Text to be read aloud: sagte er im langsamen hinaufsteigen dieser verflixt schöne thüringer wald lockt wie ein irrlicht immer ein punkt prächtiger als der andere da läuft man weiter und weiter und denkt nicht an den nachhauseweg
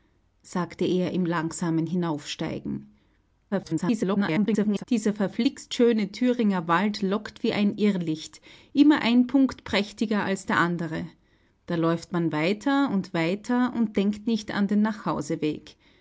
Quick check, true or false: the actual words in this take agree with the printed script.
false